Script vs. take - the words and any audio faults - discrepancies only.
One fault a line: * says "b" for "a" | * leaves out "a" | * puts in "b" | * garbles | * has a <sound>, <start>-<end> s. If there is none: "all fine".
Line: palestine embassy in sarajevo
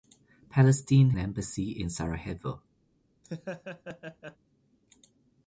* has a laugh, 3.2-4.4 s